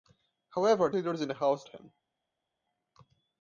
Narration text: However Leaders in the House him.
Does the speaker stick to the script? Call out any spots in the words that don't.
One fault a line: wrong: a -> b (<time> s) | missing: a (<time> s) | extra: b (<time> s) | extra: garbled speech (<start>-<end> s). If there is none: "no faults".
no faults